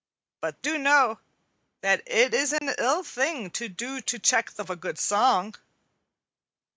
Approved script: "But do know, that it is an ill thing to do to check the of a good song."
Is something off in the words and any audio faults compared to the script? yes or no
yes